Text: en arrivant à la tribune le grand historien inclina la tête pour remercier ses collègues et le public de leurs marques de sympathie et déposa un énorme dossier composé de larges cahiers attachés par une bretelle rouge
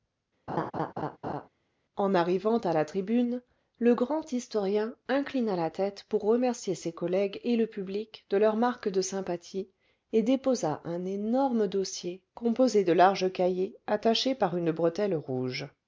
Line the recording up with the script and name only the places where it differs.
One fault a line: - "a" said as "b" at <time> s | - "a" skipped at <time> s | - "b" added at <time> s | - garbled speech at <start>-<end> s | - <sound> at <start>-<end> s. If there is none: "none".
- laugh at 0.5-1.5 s